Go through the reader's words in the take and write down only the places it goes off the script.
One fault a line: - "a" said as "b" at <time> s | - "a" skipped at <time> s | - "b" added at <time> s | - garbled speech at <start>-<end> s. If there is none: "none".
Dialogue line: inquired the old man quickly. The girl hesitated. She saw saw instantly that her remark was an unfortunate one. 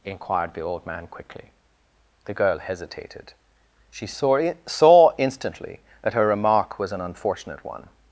none